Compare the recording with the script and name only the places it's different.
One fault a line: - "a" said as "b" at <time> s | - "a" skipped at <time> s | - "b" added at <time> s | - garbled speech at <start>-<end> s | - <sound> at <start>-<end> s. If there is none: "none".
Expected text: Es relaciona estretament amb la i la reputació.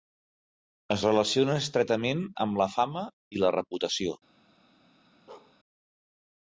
- "fama" added at 2.8 s
- bark at 5.3-5.6 s